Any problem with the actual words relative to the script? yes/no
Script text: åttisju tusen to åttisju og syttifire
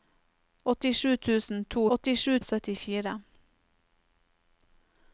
no